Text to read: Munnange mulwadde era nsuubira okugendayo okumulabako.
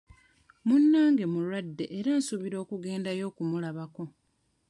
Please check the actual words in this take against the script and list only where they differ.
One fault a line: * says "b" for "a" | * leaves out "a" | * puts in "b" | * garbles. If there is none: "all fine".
all fine